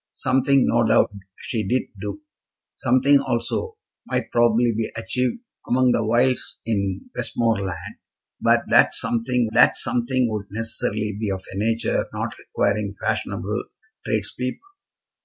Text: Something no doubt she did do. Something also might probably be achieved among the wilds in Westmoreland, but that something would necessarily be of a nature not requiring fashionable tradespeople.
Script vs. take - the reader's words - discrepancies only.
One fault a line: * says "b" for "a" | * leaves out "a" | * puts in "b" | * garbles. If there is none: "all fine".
* puts in "that something"